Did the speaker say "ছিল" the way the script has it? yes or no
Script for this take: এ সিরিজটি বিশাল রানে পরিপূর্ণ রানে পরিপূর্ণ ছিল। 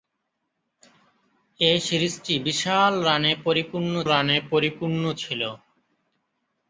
yes